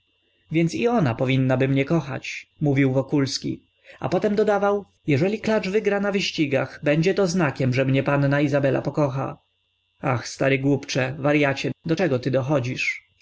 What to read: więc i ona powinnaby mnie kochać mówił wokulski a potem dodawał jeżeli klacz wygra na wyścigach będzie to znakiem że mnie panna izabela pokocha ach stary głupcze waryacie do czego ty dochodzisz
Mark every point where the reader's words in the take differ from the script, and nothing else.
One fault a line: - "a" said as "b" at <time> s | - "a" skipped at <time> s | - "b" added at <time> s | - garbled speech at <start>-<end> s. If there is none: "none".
none